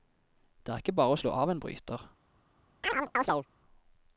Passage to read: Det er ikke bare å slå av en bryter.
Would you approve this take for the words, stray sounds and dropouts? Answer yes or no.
no